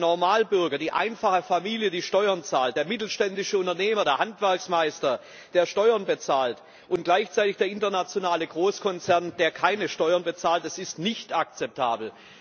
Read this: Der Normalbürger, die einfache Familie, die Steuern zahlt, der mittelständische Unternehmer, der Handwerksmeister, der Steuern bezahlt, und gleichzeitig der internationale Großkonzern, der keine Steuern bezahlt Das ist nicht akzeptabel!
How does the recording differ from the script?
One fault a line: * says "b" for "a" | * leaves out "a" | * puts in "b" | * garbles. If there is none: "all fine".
all fine